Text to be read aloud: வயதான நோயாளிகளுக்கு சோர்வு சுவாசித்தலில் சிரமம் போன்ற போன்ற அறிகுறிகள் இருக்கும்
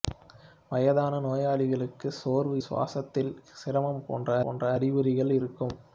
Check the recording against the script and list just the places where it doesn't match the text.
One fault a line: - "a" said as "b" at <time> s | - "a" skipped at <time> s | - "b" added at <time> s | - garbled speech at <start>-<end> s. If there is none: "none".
none